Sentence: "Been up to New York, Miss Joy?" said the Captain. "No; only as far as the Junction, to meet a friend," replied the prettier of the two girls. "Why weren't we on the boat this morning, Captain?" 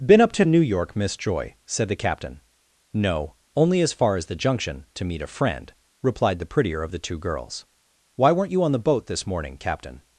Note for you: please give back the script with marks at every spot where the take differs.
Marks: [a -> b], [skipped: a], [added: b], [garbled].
"Been up to New York, Miss Joy?" said the Captain. "No; only as far as the Junction, to meet a friend," replied the prettier of the two girls. "Why weren't [we -> you] on the boat this morning, Captain?"